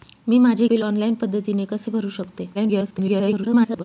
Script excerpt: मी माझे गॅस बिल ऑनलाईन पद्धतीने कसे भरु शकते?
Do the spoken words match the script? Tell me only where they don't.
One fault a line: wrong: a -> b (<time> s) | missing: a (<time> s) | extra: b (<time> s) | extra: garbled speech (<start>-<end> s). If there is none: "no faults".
missing: गॅस (0.7 s)
extra: garbled speech (2.5-3.8 s)